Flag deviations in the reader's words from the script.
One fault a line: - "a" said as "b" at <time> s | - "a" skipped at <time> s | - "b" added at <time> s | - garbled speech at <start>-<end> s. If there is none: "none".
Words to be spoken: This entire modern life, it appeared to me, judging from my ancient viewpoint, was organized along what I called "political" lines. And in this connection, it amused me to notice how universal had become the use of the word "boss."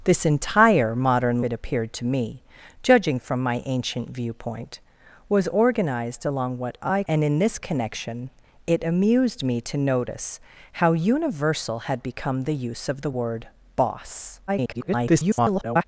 - "life" skipped at 1.4 s
- "called political lines" skipped at 7.0 s
- garbled speech at 14.5-15.8 s